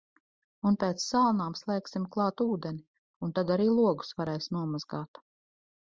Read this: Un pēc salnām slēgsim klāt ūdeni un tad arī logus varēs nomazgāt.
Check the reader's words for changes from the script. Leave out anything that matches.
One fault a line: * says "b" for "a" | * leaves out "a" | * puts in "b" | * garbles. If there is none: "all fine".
all fine